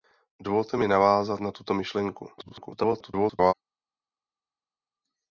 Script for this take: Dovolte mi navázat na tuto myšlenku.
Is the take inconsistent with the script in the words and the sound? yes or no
yes